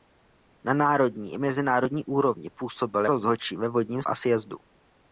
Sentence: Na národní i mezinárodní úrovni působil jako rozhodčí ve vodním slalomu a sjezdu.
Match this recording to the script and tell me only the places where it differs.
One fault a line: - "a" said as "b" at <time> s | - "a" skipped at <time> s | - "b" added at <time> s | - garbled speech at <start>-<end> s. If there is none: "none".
- "jako" skipped at 3.0 s
- "slalomu" skipped at 4.0 s